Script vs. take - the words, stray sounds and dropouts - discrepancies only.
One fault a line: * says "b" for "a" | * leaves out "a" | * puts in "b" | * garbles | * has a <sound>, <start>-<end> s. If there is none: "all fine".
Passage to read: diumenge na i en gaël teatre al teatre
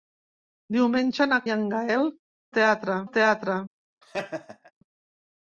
* has a laugh, 4.0-4.7 s